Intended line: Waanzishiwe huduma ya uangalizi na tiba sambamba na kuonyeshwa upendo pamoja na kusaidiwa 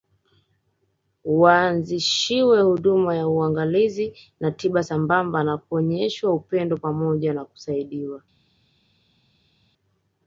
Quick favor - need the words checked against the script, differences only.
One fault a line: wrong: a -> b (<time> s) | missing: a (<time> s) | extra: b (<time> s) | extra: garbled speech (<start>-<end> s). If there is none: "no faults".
no faults